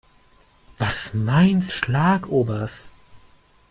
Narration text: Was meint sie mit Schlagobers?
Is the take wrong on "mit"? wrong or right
wrong